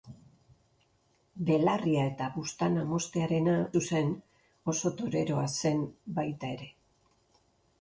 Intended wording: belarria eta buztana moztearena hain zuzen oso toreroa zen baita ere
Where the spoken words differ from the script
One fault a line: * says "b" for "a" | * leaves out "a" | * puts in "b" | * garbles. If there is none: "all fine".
* leaves out "hain"